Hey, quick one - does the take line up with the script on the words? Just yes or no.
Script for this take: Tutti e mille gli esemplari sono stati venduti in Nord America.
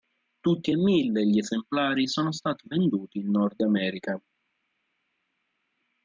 yes